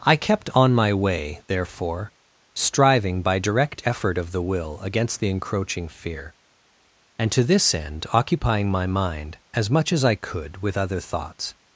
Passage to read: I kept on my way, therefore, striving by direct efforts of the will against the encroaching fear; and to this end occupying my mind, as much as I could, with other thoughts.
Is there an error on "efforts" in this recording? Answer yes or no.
yes